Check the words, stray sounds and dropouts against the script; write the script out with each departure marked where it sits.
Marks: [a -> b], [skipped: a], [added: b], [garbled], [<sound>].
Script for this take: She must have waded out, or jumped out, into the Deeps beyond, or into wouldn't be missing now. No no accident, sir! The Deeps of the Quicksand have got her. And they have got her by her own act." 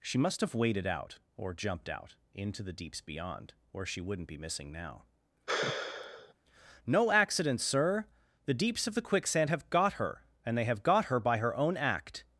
She must have waded out, or jumped out, into the Deeps beyond, or [into -> she] wouldn't be missing now. [sigh] No [skipped: no] accident, sir! The Deeps of the Quicksand have got her. And they have got her by her own act."